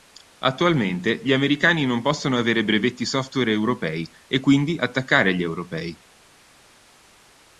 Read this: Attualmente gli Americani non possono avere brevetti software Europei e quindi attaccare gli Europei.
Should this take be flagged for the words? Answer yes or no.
no